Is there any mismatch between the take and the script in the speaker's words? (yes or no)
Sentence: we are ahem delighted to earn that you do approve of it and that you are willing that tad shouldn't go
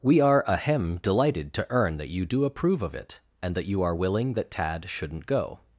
no